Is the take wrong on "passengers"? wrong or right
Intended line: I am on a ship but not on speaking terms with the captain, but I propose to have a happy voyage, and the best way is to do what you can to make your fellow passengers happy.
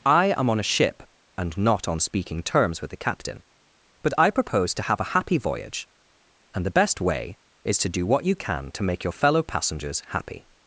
right